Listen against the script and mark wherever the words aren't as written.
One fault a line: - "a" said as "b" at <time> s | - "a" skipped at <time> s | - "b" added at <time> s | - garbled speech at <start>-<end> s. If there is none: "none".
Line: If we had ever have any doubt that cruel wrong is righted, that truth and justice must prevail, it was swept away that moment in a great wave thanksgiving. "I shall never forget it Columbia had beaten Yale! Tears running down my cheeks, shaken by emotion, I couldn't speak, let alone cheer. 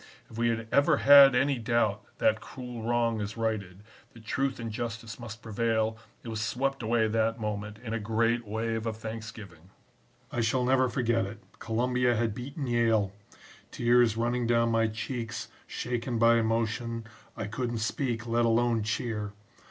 - "have" said as "had" at 1.0 s
- "of" added at 8.9 s